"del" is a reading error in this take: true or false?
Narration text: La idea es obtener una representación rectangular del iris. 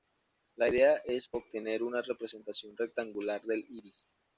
false